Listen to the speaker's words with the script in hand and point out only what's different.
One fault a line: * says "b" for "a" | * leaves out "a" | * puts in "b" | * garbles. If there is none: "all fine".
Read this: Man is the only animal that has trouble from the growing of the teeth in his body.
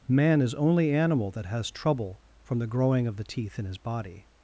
* leaves out "the"